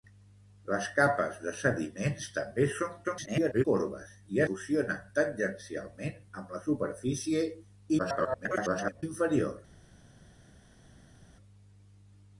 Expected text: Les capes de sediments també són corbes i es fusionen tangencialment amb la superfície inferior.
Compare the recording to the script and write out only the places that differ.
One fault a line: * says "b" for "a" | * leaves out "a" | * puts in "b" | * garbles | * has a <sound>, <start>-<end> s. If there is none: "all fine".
* garbles
* leaves out "es"
* garbles